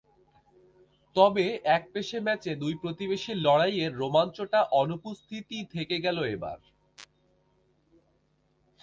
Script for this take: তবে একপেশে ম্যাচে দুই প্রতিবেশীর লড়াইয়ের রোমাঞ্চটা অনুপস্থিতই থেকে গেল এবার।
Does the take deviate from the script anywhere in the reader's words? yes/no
no